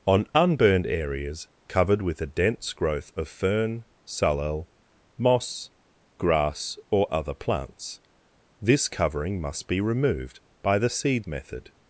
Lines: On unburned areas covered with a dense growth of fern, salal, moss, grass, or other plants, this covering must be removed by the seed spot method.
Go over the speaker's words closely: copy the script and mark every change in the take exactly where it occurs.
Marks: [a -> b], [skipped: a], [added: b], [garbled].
On unburned areas covered with a dense growth of fern, salal, moss, grass, or other plants, this covering must be removed by the seed [skipped: spot] method.